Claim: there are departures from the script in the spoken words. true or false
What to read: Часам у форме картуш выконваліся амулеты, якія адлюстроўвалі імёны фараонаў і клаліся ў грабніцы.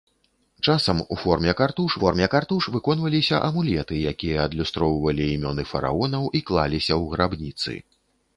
true